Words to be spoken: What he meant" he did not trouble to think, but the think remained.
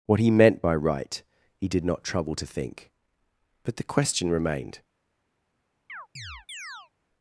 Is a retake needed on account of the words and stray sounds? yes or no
yes